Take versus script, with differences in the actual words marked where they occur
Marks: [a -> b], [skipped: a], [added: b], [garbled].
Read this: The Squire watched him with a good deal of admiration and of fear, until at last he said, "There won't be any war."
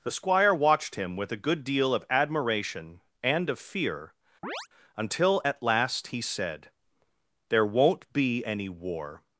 The Squire watched him with a good deal of admiration and of fear, until at last he said, "There won't be any war."